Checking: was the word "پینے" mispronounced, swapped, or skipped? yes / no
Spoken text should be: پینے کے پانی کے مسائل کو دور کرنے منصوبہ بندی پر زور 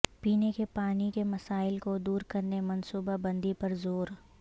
no